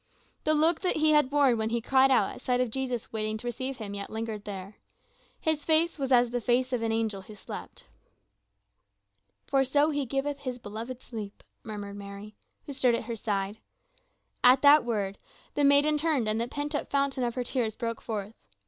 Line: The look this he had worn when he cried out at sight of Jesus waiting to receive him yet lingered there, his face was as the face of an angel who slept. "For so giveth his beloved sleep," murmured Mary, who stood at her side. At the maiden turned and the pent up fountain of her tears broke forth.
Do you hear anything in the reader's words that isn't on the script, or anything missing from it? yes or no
yes